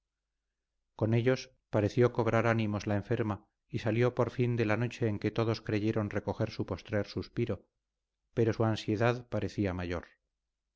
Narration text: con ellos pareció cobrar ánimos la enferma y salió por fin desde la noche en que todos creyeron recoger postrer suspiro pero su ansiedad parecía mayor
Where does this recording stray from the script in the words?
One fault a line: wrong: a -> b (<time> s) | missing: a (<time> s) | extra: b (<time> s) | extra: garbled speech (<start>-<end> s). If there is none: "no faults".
wrong: desde -> de (4.5 s)
extra: su (6.5 s)